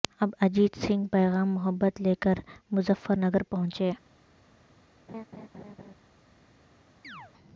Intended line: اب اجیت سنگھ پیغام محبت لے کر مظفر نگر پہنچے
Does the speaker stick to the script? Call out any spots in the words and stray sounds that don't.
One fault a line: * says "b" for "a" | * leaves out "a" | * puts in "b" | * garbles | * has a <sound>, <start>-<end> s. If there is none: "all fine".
* has a laugh, 5.1-6.0 s
* has a chirp, 7.0-7.3 s